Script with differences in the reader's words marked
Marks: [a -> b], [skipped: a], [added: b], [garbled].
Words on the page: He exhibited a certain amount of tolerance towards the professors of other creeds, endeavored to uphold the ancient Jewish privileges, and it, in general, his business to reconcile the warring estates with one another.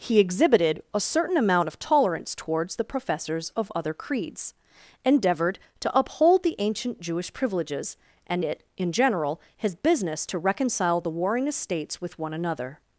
He exhibited a certain amount of tolerance towards the professors of other creeds, endeavored to uphold the ancient Jewish privileges, and it, in general, his business to reconcile the warring estates with one another.